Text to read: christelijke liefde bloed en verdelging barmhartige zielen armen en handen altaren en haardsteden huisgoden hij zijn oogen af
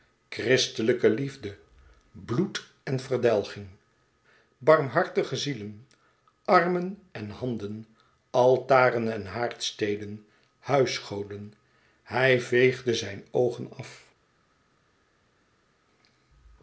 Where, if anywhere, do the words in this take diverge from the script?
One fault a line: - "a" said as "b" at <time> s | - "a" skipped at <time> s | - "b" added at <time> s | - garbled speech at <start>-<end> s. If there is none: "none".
- "veegde" added at 12.4 s